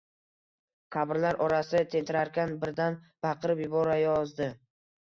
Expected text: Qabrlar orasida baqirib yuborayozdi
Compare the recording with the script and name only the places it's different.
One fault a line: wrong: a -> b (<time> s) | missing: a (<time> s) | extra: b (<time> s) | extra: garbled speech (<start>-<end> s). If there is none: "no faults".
extra: tentirarkan birdan (1.9 s)